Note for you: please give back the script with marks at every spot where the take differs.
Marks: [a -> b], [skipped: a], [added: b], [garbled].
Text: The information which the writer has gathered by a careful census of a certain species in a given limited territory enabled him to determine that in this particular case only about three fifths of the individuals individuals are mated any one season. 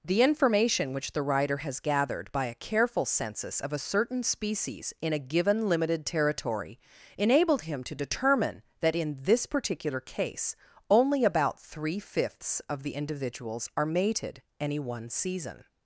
The information which the writer has gathered by a careful census of a certain species in a given limited territory enabled him to determine that in this particular case only about three fifths of the individuals [skipped: individuals] are mated any one season.